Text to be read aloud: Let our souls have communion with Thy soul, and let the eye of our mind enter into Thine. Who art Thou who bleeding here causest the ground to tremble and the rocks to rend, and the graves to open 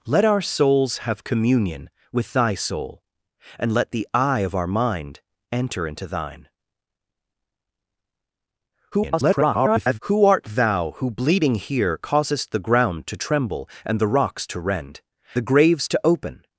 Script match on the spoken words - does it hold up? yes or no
no